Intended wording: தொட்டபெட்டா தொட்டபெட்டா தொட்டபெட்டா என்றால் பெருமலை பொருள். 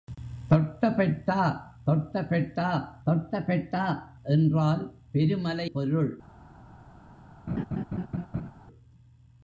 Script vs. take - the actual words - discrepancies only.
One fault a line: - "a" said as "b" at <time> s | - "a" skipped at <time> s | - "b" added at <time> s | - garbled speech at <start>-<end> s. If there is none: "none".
none